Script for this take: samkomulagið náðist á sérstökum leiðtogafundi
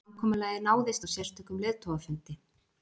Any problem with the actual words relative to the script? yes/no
no